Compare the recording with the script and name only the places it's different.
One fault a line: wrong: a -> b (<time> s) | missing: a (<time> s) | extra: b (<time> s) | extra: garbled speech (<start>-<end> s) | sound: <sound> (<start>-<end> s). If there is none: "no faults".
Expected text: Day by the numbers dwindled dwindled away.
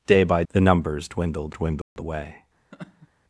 sound: dropout (1.8-2.0 s)
sound: laugh (2.7-3.1 s)